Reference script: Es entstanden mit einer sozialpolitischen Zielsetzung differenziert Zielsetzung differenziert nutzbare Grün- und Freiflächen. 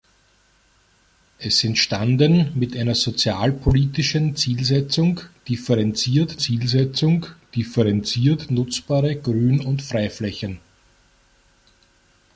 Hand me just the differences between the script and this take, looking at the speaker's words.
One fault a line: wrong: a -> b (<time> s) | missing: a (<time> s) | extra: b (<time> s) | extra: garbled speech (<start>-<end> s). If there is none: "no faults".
no faults